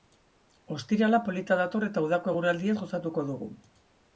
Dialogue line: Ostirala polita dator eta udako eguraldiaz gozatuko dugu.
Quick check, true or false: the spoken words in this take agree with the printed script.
true